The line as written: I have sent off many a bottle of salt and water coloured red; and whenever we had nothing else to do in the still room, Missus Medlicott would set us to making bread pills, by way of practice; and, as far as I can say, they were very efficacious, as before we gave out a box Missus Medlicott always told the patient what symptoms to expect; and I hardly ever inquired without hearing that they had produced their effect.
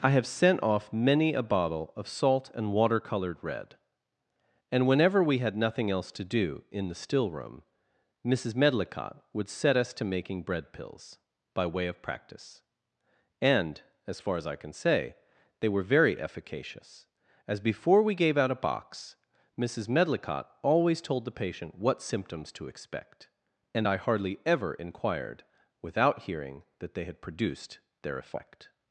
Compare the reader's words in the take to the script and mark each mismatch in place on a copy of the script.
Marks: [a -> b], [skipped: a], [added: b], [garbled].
I have sent off many a bottle of salt and water coloured red; and whenever we had nothing else to do in the still room, Missus Medlicott would set us to making bread pills, by way of practice; and, as far as I can say, they were very efficacious, as before we gave out a box Missus Medlicott always told the patient what symptoms to expect; and I hardly ever inquired without hearing that they had produced their effect.